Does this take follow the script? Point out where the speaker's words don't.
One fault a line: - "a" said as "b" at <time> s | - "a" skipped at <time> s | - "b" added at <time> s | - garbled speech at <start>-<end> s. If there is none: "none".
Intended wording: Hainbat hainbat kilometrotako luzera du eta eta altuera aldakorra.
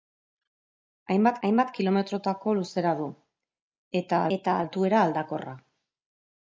none